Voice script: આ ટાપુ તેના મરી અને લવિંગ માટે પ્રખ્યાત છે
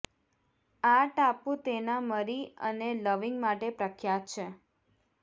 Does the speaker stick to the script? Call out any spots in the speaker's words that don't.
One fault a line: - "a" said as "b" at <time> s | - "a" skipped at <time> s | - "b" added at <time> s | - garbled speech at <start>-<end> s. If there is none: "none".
none